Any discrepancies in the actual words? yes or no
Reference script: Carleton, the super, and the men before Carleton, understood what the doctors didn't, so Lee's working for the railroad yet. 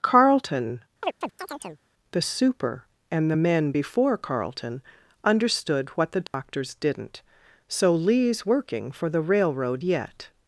no